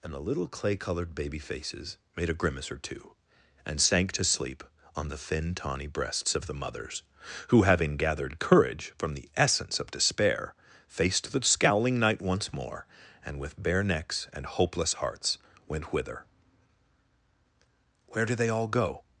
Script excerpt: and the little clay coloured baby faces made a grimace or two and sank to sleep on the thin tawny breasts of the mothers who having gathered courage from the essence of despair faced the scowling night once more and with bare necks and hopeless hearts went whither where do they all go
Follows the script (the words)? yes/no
yes